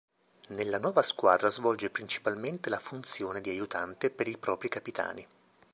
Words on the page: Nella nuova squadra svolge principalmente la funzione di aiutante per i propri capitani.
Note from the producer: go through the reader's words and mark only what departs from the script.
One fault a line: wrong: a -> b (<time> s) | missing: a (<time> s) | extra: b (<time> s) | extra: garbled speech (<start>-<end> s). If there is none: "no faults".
no faults